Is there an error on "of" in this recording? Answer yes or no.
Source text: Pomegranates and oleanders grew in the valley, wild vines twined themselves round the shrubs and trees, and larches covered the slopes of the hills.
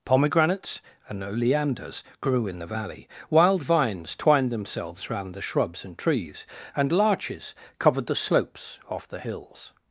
yes